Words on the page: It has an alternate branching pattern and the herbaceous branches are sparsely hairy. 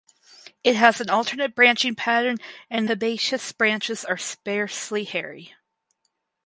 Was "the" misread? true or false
true